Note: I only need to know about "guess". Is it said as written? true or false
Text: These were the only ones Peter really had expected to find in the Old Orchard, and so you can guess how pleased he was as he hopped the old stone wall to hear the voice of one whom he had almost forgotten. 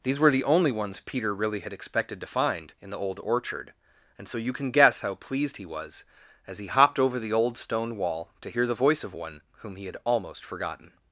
true